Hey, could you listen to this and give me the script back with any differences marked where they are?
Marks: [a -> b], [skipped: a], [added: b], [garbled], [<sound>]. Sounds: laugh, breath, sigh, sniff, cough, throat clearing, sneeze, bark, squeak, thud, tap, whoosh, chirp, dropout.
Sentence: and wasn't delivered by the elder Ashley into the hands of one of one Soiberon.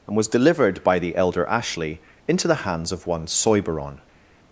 and [wasn't -> was] delivered by the elder Ashley into the hands of one [skipped: of one] Soiberon.